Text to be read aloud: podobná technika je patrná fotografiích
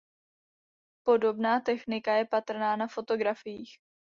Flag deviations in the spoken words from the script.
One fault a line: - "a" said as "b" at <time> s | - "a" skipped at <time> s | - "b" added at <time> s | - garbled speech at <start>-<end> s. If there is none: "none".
- "na" added at 2.8 s